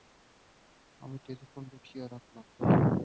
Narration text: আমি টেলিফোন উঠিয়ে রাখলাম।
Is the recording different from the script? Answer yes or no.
no